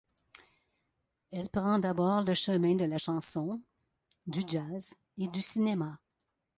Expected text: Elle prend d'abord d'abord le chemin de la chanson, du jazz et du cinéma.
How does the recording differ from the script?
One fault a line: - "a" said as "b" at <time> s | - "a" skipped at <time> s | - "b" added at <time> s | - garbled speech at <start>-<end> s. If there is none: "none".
- "d'abord" skipped at 2.2 s